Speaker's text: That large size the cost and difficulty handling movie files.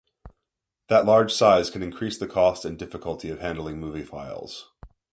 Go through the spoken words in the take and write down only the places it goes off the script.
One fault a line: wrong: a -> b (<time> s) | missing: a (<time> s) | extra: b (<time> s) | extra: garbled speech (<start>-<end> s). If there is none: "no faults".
extra: can increase (1.7 s)
extra: of (3.3 s)